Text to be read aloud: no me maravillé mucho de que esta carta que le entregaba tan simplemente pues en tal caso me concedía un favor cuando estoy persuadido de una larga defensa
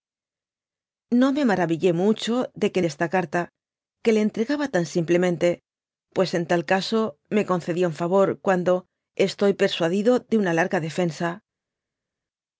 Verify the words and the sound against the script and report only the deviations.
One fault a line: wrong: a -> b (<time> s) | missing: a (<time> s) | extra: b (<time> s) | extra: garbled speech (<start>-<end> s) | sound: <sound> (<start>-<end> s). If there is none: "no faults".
no faults